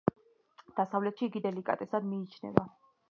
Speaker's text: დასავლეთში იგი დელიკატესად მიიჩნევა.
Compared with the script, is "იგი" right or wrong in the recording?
right